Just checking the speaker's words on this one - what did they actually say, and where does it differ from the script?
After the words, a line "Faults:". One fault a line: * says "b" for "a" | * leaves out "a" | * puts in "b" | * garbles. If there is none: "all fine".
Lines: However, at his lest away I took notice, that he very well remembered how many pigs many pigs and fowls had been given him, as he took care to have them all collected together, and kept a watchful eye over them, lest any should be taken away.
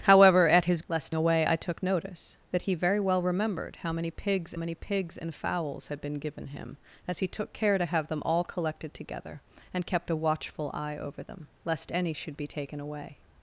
However, at his lest away I took notice, that he very well remembered how many pigs many pigs and fowls had been given him, as he took care to have them all collected together, and kept a watchful eye over them, lest any should be taken away.
Faults:
all fine